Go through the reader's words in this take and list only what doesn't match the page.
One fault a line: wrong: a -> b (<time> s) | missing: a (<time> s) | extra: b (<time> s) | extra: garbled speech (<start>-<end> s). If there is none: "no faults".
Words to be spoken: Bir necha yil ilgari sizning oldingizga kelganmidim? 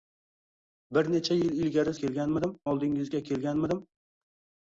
wrong: sizning -> kelganmidim (2.0 s)